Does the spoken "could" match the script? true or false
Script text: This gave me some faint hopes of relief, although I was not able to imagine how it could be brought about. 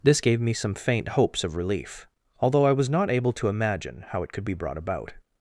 true